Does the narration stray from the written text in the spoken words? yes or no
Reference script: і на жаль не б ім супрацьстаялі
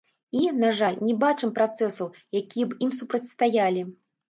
yes